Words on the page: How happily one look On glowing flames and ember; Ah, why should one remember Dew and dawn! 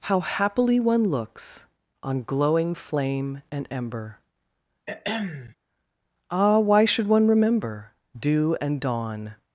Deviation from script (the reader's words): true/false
true